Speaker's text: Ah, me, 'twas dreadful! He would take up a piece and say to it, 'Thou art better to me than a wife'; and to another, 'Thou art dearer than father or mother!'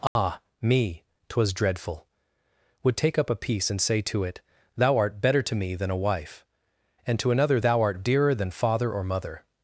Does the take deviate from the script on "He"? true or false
true